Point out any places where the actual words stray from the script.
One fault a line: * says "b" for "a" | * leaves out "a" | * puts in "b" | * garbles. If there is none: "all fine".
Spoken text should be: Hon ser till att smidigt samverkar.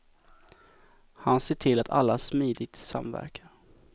* says "Han" for "Hon"
* puts in "alla"